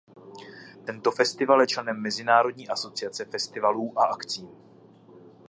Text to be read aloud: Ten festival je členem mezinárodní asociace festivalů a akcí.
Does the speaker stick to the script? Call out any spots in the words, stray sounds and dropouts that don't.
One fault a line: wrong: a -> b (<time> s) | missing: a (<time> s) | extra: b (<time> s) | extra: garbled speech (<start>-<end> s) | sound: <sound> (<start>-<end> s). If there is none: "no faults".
wrong: Ten -> Tento (0.8 s)